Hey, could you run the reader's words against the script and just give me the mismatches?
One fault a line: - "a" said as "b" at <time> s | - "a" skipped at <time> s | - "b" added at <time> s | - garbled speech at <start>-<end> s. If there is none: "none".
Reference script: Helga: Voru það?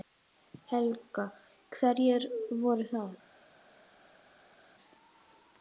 - "Hverjir" added at 1.8 s